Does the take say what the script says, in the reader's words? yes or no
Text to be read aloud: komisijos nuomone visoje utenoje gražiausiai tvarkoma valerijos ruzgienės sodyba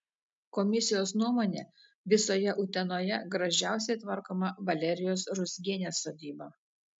yes